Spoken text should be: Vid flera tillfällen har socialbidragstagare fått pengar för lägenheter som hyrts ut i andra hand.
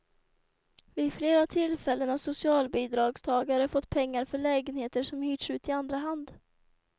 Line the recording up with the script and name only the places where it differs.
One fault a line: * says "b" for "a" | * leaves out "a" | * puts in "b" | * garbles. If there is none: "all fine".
all fine